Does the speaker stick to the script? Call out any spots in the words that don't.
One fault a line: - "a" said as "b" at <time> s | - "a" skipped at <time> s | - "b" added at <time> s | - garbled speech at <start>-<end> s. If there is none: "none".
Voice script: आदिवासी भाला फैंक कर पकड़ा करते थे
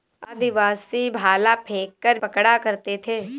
none